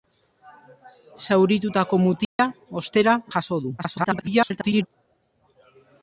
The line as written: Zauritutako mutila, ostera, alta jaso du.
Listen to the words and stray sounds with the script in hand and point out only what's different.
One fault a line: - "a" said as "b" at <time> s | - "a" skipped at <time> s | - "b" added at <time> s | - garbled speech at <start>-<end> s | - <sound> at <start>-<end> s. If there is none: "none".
- dropout at 2.2-2.4 s
- "alta" skipped at 3.1 s
- garbled speech at 3.8-4.9 s